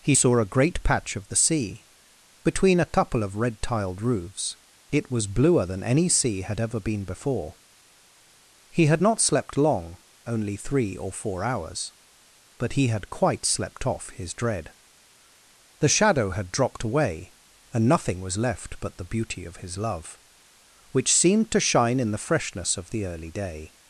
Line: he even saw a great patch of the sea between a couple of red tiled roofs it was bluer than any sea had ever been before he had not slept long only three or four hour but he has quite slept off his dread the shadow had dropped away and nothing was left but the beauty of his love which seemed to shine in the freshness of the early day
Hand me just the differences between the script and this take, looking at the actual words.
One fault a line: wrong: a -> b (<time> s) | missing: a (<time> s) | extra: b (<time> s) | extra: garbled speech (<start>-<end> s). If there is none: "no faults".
missing: even (0.1 s)
wrong: hour -> hours (11.4 s)
wrong: has -> had (12.9 s)